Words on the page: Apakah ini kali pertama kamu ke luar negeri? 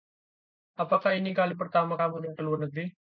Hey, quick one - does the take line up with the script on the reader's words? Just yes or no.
yes